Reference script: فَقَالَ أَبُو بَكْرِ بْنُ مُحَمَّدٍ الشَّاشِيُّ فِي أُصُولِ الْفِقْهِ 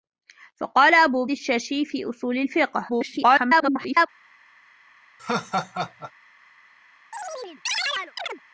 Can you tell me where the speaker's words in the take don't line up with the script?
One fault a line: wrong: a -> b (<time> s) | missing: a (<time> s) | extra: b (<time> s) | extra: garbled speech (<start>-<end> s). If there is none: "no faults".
missing: بَكْرِ بْنُ مُحَمَّدٍ (1.2 s)
extra: garbled speech (2.9-4.1 s)